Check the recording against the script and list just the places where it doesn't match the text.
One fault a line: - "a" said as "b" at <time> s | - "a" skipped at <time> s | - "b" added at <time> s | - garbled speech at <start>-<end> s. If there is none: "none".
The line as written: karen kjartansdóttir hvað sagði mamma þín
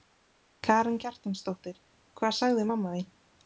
none